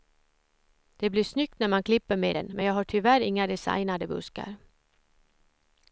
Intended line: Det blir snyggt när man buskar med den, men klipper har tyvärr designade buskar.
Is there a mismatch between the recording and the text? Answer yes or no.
yes